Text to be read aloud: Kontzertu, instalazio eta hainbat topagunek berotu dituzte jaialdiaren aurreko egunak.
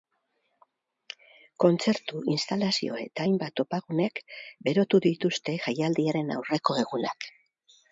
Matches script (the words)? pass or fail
pass